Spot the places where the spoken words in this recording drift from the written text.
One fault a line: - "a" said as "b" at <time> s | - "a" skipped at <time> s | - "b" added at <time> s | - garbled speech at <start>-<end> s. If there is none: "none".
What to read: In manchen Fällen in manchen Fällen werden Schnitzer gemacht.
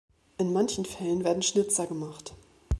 - "in manchen Fällen" skipped at 1.2 s